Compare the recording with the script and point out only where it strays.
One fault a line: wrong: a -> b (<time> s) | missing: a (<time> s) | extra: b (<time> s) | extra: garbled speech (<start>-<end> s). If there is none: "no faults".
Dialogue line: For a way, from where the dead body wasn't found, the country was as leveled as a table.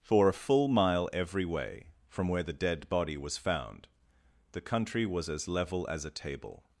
extra: full mile every (0.3 s)
wrong: wasn't -> was (3.2 s)
wrong: leveled -> level (5.5 s)